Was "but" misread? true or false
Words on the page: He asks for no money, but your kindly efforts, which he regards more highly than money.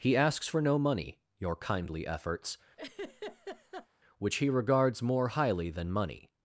true